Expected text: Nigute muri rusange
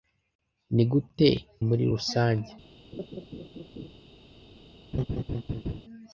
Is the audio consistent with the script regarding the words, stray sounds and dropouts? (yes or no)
no